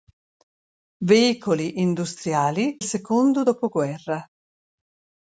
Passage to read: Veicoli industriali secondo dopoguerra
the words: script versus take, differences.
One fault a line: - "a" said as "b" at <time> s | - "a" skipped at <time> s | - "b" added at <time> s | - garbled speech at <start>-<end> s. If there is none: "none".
none